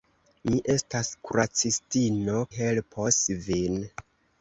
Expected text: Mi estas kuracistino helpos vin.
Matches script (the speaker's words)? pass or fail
pass